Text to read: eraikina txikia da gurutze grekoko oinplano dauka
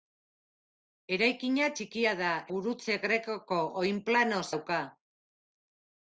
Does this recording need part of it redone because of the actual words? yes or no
no